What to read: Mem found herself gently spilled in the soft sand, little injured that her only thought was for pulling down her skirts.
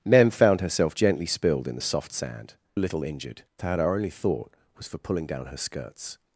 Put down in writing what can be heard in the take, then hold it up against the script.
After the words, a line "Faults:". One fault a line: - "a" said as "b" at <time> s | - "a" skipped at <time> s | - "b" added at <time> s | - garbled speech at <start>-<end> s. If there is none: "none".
Mem found herself gently spilled in the soft sand, little injured that her only thought was for pulling down her skirts.
Faults:
none